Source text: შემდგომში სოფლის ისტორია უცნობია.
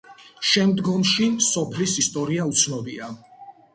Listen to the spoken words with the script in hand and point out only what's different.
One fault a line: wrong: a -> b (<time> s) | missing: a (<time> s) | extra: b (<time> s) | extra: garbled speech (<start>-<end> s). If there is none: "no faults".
no faults